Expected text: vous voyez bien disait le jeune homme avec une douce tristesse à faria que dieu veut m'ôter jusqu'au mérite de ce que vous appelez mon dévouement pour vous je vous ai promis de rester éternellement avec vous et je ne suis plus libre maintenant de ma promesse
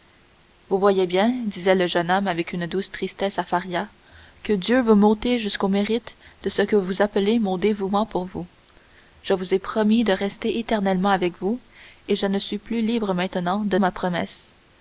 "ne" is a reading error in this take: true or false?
false